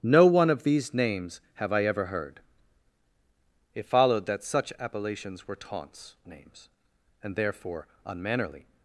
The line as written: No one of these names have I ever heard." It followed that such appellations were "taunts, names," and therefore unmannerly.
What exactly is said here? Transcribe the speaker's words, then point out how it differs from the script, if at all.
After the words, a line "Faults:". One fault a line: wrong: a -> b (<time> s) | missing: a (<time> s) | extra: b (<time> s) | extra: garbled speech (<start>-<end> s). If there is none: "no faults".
No one of these names have I ever heard." It followed that such appellations were "taunts, names," and therefore unmannerly.
Faults:
no faults